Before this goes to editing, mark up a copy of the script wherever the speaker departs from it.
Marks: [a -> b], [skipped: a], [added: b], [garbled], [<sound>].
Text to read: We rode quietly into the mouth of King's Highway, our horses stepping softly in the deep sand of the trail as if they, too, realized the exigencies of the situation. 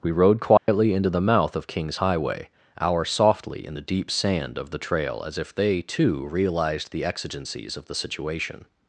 We rode quietly [dropout] into the mouth of King's Highway, our [skipped: horses stepping] softly in the deep sand of the trail as if they, too, realized the exigencies of the situation.